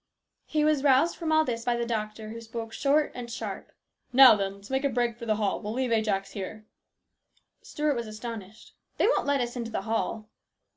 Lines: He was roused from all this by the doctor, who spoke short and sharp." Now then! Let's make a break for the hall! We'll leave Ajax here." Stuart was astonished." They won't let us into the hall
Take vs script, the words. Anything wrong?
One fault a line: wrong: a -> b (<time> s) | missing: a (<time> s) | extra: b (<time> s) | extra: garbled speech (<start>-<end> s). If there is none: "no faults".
no faults